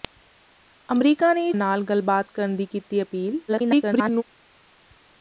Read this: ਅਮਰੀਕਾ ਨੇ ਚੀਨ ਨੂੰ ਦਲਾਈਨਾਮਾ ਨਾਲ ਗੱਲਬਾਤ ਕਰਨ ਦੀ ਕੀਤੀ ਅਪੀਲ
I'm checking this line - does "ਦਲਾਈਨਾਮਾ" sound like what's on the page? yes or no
no